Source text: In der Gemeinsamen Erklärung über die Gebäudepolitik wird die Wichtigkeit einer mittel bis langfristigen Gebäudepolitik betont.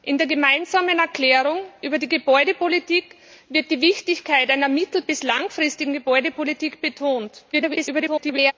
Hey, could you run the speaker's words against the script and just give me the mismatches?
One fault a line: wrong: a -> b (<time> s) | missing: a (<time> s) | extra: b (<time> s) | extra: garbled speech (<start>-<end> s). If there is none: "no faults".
extra: garbled speech (7.5-8.5 s)